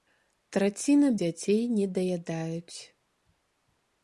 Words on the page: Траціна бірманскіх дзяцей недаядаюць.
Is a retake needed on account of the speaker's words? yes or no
yes